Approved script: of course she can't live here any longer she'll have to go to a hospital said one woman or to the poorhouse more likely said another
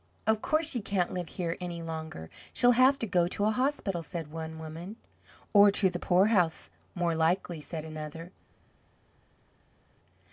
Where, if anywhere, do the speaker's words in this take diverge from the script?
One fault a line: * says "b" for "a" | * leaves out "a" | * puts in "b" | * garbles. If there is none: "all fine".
all fine